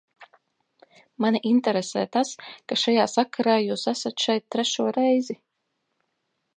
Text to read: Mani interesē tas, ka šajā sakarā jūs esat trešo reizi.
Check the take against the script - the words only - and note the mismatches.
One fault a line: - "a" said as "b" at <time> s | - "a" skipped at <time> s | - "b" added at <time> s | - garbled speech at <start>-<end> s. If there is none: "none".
- "šeit" added at 4.3 s